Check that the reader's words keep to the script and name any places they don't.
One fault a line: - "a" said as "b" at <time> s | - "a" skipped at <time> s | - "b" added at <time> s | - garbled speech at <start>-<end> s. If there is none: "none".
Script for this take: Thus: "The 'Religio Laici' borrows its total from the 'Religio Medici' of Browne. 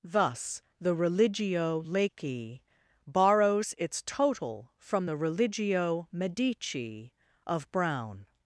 none